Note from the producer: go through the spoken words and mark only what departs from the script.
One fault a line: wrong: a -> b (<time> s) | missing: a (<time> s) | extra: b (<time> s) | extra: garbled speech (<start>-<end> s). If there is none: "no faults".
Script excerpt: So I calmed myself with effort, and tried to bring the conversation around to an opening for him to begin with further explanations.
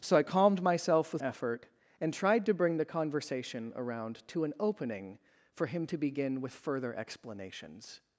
no faults